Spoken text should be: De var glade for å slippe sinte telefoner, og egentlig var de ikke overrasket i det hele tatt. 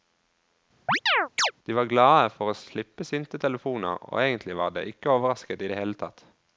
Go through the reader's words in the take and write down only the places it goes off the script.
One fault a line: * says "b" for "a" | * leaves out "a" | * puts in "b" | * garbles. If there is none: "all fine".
all fine